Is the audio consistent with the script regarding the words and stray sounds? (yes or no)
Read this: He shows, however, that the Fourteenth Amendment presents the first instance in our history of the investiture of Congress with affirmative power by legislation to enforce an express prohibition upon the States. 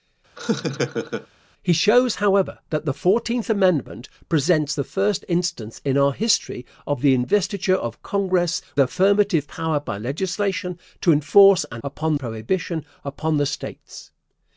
no